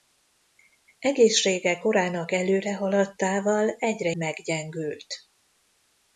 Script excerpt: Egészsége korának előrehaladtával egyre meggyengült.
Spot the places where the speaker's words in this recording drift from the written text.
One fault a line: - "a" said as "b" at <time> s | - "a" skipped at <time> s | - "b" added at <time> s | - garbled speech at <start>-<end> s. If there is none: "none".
none